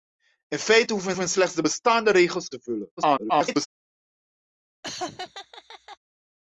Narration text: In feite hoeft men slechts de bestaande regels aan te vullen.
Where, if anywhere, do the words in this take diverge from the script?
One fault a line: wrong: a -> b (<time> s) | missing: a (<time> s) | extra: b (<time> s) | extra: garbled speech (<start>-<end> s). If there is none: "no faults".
extra: men (1.2 s)
missing: aan (2.5 s)
extra: garbled speech (3.0-3.7 s)